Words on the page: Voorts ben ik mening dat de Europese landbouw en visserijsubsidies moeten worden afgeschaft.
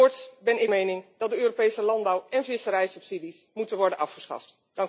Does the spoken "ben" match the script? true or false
true